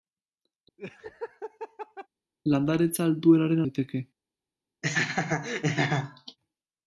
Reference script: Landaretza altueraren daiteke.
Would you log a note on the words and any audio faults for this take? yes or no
yes